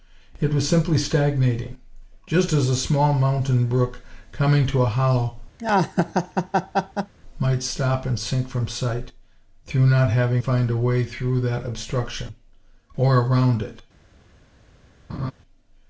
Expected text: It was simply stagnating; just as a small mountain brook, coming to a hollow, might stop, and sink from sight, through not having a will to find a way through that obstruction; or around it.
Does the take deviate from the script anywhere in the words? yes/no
yes